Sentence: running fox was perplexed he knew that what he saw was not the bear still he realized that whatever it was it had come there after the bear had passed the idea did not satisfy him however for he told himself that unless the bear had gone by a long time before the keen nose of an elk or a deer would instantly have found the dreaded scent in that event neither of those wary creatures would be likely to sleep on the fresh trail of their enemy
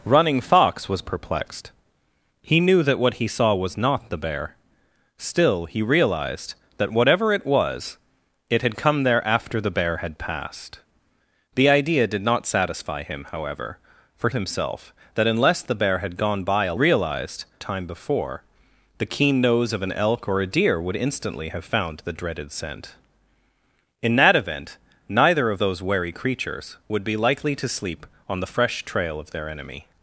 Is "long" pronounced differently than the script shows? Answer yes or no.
yes